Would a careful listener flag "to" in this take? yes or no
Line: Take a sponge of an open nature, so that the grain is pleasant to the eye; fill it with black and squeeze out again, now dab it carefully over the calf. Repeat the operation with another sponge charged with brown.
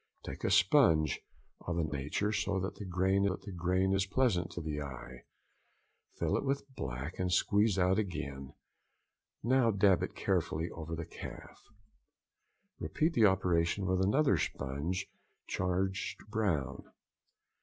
no